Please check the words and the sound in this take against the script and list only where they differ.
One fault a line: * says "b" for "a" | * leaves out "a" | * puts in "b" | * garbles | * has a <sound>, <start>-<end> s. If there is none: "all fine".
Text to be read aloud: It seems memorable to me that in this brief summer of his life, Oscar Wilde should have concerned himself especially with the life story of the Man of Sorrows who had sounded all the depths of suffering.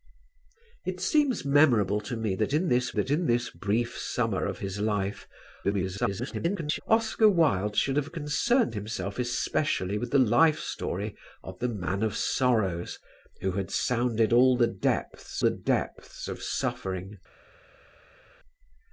* puts in "that in this"
* garbles
* puts in "the depths"